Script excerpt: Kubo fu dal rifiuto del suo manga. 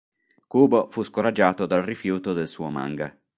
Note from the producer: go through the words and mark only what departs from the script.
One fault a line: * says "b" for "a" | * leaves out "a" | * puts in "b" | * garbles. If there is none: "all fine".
* puts in "scoraggiato"